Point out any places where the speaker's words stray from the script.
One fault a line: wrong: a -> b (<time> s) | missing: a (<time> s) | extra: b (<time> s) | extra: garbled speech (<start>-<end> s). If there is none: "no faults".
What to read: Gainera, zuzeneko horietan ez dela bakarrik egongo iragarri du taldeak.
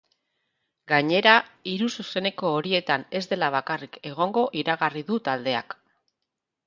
extra: hiru (1.7 s)